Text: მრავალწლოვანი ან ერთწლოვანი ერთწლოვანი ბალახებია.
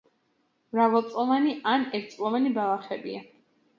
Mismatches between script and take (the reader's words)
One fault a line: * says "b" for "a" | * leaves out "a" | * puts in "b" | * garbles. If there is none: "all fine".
* leaves out "ერთწლოვანი"